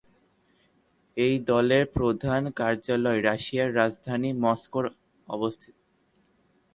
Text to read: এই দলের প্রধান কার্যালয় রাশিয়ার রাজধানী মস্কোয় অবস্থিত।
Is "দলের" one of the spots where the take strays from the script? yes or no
no